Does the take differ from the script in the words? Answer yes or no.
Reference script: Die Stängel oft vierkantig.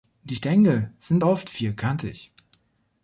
yes